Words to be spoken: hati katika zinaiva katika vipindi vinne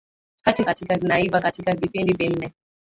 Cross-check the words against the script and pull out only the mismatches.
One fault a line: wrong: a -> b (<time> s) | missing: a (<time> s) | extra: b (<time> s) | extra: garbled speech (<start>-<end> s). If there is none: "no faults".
no faults